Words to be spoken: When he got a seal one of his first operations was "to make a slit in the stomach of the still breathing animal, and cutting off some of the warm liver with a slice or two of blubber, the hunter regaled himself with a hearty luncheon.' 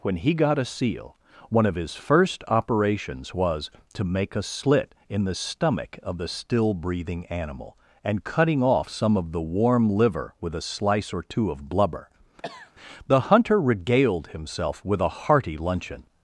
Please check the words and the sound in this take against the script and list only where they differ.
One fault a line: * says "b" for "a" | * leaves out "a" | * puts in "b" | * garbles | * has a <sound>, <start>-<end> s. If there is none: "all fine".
* has a cough, 12.4-12.7 s